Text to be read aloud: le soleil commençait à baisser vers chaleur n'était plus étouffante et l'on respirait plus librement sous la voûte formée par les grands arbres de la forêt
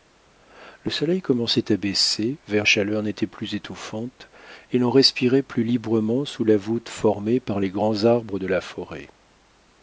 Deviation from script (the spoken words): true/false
false